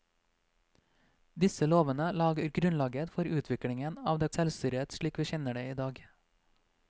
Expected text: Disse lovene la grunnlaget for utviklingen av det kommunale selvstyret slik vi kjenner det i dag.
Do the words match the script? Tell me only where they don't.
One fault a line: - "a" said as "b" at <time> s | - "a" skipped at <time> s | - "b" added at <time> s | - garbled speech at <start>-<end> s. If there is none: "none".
- "kommunale" skipped at 4.3 s